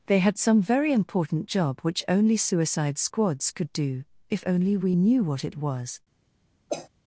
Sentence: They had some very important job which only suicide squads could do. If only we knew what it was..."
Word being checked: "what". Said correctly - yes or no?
yes